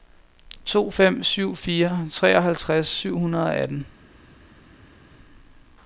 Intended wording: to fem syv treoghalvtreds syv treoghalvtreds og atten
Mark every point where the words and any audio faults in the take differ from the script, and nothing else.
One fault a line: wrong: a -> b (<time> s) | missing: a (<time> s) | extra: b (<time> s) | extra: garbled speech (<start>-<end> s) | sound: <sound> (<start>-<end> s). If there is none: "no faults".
extra: fire (1.6 s)
wrong: treoghalvtreds -> hundrede (3.2 s)